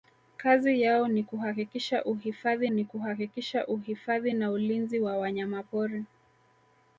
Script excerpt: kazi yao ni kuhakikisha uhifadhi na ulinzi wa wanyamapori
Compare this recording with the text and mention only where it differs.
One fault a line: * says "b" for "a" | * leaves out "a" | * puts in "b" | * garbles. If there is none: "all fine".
* puts in "ni kuhakikisha uhifadhi"